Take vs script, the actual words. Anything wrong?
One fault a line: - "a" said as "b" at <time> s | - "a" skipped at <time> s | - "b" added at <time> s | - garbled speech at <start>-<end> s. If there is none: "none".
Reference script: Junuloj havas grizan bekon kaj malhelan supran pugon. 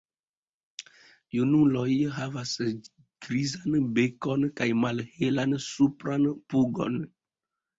none